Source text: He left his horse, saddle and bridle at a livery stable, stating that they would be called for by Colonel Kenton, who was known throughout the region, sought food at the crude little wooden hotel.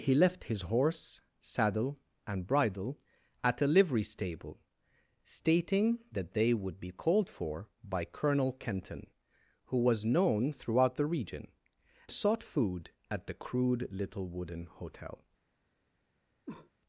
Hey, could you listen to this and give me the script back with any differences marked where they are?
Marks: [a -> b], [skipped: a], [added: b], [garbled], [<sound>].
He left his horse, saddle and bridle at a livery stable, stating that they would be called for by Colonel Kenton, who was known throughout the region, sought food at the crude little wooden hotel. [cough]